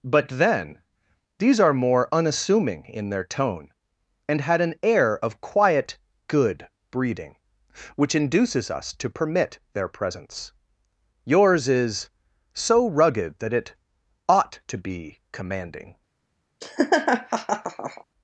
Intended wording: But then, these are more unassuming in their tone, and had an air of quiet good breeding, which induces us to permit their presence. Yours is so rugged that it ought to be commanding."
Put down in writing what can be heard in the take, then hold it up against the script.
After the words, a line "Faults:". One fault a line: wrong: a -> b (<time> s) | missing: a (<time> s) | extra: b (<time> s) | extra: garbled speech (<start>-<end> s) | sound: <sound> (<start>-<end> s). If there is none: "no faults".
But then, these are more unassuming in their tone, and had an air of quiet good breeding, which induces us to permit their presence. Yours is so rugged that it ought to be commanding."
Faults:
sound: laugh (16.6-18.0 s)